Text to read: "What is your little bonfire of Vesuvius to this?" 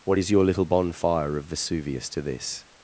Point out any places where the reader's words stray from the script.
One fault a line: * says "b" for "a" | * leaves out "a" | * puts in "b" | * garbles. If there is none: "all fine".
all fine